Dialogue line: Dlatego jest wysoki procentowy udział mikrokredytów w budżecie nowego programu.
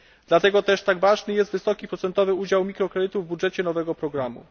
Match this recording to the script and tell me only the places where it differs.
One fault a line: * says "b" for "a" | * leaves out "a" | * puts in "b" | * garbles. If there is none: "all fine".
* puts in "też tak ważny"